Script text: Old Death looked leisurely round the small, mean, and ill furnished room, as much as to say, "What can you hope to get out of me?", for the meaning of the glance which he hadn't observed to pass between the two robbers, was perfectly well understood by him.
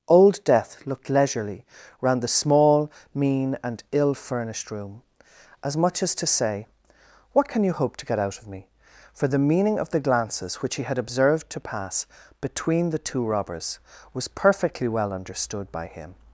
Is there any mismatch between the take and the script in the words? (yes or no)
yes